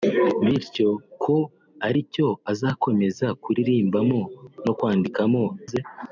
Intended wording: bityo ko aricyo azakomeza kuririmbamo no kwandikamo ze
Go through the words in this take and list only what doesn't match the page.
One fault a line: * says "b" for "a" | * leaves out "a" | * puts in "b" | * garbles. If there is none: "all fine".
all fine